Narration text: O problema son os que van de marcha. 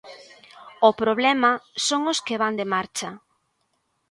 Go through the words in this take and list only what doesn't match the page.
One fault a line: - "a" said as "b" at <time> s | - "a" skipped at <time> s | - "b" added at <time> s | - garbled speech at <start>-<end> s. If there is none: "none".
none